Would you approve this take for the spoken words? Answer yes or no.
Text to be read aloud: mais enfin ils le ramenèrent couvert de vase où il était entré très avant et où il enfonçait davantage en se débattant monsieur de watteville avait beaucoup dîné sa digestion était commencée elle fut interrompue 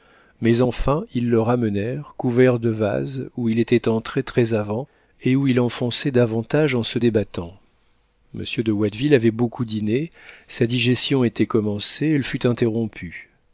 yes